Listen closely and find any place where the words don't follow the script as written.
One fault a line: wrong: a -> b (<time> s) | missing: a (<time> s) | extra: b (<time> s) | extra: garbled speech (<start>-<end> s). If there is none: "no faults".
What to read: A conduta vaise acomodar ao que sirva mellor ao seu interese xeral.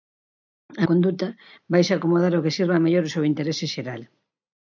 no faults